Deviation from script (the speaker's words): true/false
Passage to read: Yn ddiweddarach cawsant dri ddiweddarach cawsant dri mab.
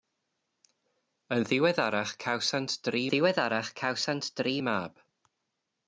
false